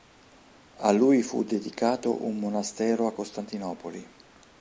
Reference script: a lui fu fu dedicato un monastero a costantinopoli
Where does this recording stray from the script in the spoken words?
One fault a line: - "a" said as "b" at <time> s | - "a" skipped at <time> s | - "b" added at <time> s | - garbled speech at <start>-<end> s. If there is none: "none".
- "fu" skipped at 1.4 s